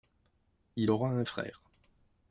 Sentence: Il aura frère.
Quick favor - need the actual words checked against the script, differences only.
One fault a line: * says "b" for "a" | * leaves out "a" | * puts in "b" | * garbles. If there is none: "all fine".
* puts in "un"